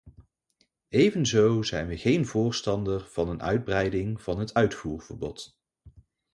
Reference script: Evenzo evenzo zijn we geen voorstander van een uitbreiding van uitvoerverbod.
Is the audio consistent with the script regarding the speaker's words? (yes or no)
no